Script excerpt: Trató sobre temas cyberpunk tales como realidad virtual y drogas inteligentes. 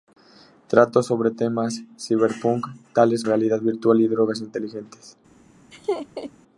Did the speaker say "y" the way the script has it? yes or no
yes